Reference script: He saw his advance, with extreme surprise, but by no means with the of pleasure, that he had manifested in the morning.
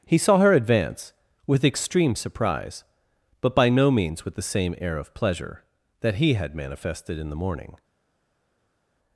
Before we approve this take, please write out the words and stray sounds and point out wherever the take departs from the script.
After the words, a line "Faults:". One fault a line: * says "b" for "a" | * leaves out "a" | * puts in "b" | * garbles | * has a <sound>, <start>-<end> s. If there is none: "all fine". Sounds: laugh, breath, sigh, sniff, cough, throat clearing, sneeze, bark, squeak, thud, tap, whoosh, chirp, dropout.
He saw her advance, with extreme surprise, but by no means with the same air of pleasure, that he had manifested in the morning.
Faults:
* says "her" for "his"
* puts in "same air"